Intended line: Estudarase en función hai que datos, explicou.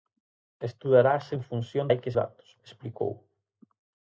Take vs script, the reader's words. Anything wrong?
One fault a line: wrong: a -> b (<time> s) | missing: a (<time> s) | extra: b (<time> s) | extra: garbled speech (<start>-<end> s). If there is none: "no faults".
no faults